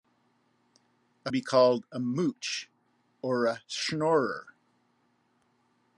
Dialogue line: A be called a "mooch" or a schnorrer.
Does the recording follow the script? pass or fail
pass